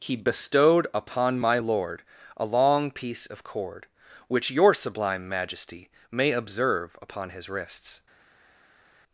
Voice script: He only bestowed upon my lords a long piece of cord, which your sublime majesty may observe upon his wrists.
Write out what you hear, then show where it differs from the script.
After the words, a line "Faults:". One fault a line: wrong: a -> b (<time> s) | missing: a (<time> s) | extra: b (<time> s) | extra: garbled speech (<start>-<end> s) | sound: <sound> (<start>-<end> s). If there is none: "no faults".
He bestowed upon my lord a long piece of cord, which your sublime majesty may observe upon his wrists.
Faults:
missing: only (0.1 s)
wrong: lords -> lord (1.6 s)